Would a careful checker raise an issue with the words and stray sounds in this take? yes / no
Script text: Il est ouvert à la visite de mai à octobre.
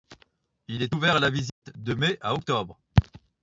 yes